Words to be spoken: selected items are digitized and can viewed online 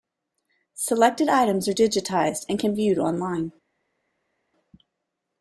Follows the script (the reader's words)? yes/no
yes